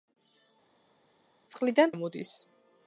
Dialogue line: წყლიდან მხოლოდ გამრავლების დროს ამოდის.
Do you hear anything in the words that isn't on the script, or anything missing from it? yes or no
yes